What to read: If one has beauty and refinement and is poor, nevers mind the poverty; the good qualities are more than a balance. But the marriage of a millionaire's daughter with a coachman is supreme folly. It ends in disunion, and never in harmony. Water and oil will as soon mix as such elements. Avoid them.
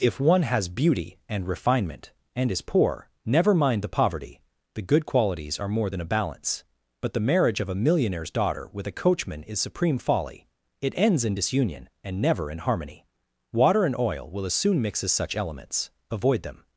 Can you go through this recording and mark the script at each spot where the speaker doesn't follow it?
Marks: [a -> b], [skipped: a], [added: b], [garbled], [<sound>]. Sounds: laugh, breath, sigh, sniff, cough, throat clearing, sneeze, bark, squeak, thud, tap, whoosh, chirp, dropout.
If one has beauty and refinement and is poor, [nevers -> never] mind the poverty; the good qualities are more than a balance. But the marriage of a millionaire's daughter with a coachman is supreme folly. It ends in disunion, and never in harmony. Water and oil will as soon mix as such elements. Avoid them.